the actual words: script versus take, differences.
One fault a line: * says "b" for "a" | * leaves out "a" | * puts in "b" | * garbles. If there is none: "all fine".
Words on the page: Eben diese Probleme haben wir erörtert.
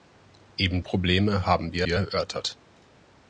* leaves out "diese"
* puts in "wir"